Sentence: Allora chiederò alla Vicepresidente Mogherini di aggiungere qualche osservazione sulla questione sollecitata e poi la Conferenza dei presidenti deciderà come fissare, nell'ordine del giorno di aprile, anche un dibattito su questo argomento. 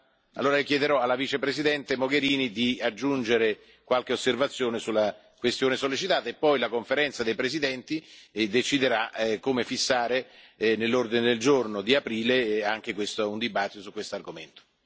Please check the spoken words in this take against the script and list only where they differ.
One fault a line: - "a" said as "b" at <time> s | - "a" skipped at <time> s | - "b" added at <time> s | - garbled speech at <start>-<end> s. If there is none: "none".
none